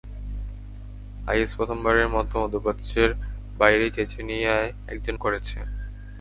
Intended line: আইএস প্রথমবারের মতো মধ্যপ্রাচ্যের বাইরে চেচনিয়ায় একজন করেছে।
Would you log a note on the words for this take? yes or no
no